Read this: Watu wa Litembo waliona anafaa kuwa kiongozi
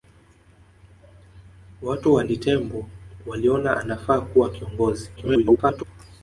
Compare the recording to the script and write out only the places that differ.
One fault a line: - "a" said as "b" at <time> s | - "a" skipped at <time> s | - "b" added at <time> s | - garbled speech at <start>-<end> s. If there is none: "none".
- garbled speech at 5.2-5.8 s